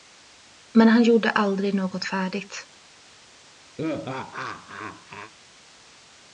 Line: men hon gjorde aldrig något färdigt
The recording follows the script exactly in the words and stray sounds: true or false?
false